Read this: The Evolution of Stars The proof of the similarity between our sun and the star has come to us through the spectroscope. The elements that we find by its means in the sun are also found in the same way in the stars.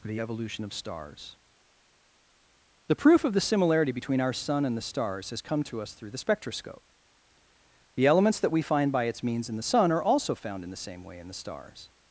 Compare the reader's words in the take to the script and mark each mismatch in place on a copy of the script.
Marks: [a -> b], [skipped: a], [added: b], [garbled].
The Evolution of Stars The proof of the similarity between our sun and the [star -> stars] has come to us through the spectroscope. The elements that we find by its means in the sun are also found in the same way in the stars.